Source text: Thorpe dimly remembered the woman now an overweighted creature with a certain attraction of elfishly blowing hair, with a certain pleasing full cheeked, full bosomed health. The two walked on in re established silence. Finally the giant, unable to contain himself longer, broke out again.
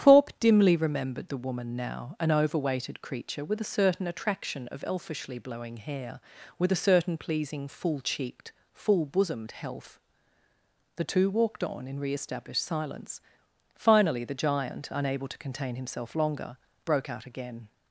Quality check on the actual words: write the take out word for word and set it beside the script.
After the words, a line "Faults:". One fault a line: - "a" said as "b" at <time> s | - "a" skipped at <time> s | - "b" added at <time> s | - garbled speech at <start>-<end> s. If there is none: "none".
Thorpe dimly remembered the woman now an overweighted creature with a certain attraction of elfishly blowing hair, with a certain pleasing full cheeked, full bosomed health. The two walked on in re established silence. Finally the giant, unable to contain himself longer, broke out again.
Faults:
none